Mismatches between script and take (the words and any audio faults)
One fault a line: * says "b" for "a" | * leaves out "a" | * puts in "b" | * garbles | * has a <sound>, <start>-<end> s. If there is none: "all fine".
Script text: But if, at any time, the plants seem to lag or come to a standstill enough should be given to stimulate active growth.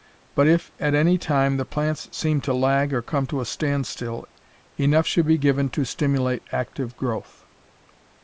all fine